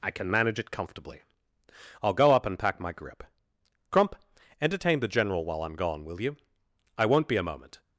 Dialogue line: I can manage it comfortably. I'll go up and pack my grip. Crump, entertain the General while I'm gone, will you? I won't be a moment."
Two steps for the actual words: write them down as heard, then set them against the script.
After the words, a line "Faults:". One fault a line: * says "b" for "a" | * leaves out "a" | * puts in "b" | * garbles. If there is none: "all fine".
I can manage it comfortably. I'll go up and pack my grip. Crump, entertain the General while I'm gone, will you? I won't be a moment."
Faults:
all fine